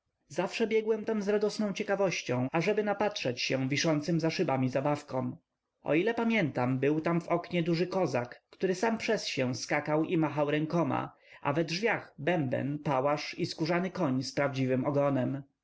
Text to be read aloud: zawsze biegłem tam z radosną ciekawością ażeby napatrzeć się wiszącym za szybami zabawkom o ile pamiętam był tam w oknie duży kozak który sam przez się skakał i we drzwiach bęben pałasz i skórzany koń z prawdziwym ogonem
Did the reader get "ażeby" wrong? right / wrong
right